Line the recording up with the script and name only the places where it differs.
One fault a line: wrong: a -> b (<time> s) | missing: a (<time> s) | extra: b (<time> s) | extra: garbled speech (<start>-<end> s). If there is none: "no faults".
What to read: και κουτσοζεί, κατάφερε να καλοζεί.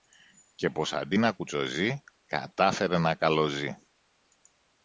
extra: πως αντί να (0.7 s)